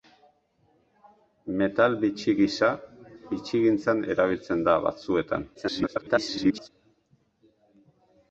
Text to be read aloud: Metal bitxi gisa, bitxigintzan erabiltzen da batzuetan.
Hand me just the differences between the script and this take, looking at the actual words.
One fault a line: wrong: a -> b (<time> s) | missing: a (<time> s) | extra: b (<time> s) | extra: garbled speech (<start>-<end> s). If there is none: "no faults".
extra: garbled speech (5.5-6.7 s)